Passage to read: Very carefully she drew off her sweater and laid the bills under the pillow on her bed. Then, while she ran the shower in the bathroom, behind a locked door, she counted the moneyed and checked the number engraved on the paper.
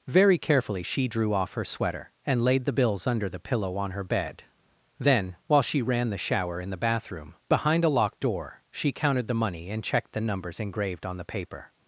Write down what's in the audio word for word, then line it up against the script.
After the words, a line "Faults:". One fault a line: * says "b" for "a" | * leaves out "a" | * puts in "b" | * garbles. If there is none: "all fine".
Very carefully she drew off her sweater and laid the bills under the pillow on her bed. Then, while she ran the shower in the bathroom, behind a locked door, she counted the money and checked the numbers engraved on the paper.
Faults:
* says "money" for "moneyed"
* says "numbers" for "number"